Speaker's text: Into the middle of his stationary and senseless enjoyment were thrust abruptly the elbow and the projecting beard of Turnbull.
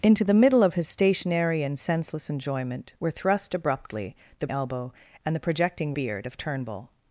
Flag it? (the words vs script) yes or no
no